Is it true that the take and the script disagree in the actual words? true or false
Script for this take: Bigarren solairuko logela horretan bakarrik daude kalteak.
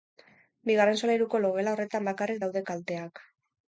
false